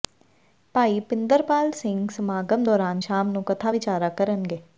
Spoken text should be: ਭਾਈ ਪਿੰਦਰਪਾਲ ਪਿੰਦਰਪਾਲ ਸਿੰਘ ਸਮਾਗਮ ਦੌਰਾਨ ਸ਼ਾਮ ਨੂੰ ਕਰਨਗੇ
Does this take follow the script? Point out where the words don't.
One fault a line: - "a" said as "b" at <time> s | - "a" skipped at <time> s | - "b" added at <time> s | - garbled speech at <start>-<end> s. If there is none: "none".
- "ਪਿੰਦਰਪਾਲ" skipped at 1.7 s
- "ਕਥਾ ਵਿਚਾਰਾਂ" added at 3.4 s